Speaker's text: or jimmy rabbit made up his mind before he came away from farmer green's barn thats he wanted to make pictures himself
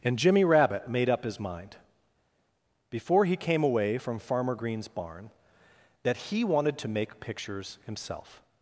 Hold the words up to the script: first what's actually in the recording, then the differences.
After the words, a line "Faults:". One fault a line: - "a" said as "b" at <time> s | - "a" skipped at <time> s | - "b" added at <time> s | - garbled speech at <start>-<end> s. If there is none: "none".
and jimmy rabbit made up his mind before he came away from farmer green's barn that he wanted to make pictures himself
Faults:
- "or" said as "and" at 0.0 s
- "thats" said as "that" at 6.0 s